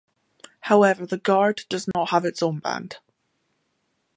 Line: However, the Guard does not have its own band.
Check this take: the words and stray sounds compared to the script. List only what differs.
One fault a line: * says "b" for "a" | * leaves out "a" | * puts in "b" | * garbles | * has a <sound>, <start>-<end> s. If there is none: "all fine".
* has a dropout, 1.9-1.9 s